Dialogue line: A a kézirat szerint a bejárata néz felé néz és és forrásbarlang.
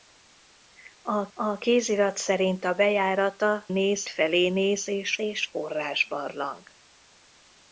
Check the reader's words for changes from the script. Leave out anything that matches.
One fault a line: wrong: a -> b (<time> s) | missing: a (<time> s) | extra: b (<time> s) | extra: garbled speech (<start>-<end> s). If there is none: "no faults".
no faults